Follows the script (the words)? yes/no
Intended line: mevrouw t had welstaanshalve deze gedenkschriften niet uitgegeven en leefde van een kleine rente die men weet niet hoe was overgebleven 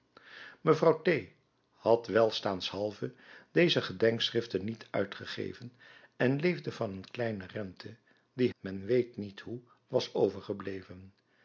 yes